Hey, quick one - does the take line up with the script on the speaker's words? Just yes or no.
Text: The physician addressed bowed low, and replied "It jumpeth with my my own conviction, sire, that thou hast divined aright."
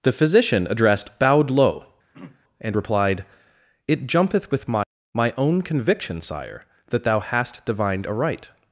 yes